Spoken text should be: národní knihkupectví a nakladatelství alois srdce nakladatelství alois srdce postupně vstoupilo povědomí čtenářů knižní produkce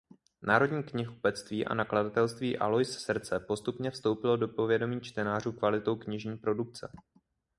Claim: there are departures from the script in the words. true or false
true